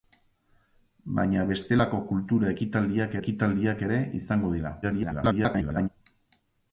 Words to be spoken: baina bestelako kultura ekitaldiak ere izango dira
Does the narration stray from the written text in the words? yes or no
yes